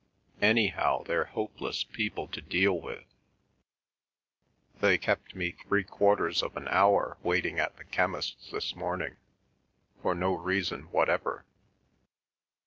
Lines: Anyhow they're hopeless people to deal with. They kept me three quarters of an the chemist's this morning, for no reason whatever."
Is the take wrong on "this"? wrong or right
right